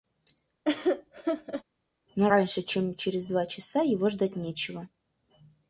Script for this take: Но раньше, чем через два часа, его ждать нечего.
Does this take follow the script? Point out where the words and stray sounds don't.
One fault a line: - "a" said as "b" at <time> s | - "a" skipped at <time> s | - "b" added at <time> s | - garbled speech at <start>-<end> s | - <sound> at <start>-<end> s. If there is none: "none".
- laugh at 0.7-1.6 s